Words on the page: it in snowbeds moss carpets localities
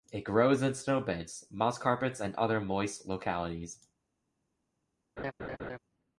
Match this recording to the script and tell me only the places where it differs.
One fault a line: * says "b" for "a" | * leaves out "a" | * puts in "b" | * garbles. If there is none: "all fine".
* puts in "grows"
* puts in "and other moist"